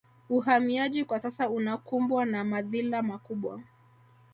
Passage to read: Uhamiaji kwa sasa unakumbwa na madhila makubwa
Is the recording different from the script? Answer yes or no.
no